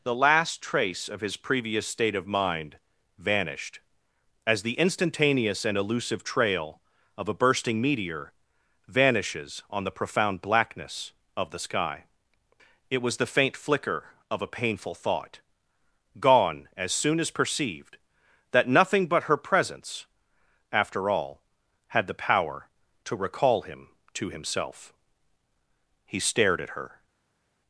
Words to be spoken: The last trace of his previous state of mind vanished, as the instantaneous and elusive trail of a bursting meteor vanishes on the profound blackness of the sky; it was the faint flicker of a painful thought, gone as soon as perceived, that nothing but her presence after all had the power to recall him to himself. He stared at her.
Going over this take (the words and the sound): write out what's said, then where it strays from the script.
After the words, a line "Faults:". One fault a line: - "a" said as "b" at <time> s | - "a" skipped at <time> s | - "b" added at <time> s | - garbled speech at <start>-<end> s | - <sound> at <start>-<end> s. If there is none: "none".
The last trace of his previous state of mind vanished, as the instantaneous and elusive trail of a bursting meteor vanishes on the profound blackness of the sky; it was the faint flicker of a painful thought, gone as soon as perceived, that nothing but her presence after all had the power to recall him to himself. He stared at her.
Faults:
none